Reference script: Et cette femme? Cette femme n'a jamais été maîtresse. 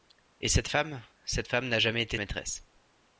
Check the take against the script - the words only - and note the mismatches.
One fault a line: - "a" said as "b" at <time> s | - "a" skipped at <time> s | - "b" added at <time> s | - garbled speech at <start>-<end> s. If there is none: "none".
none